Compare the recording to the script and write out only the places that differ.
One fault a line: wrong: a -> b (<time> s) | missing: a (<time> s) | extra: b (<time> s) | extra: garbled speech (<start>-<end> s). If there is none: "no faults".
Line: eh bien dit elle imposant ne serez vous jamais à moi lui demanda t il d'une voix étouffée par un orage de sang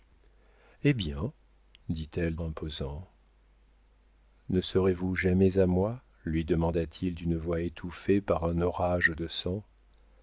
no faults